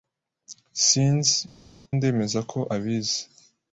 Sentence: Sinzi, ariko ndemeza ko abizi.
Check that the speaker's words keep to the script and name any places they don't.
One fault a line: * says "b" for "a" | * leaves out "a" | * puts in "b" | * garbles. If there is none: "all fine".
* leaves out "ariko"